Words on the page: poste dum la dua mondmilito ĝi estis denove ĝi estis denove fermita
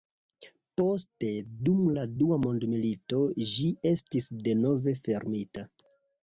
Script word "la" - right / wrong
right